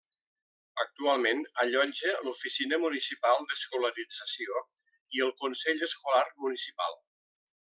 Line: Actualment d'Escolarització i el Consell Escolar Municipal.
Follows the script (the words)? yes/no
no